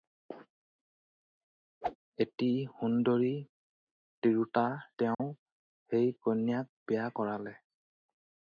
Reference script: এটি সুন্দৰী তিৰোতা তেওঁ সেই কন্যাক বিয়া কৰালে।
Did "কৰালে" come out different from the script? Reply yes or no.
no